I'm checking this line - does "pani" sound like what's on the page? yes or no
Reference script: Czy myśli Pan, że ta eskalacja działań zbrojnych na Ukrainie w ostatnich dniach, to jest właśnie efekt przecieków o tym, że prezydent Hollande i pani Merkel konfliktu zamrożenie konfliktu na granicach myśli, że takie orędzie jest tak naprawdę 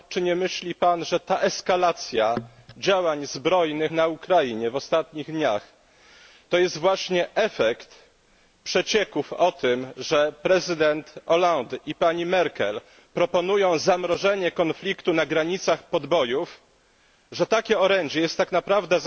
yes